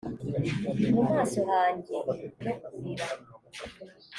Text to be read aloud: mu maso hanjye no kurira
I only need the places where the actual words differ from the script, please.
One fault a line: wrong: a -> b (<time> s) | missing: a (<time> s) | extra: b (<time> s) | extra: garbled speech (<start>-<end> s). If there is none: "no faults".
no faults